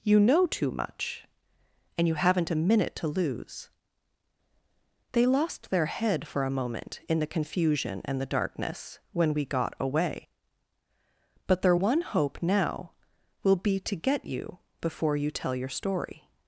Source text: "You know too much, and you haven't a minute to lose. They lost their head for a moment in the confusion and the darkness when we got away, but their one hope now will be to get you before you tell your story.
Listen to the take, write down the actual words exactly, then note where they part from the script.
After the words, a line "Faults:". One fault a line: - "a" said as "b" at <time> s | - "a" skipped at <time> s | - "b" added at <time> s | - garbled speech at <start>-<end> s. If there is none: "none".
"You know too much, and you haven't a minute to lose. They lost their head for a moment in the confusion and the darkness when we got away, but their one hope now will be to get you before you tell your story.
Faults:
none